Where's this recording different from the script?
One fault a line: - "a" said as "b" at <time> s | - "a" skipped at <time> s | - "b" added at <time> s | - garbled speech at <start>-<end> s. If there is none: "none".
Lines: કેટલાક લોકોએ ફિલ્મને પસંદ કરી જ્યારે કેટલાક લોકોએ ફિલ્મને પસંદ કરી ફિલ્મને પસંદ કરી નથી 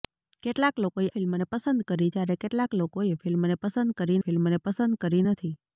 none